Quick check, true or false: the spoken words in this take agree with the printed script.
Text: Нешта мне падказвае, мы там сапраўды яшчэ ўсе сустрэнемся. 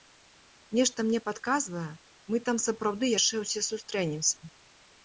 true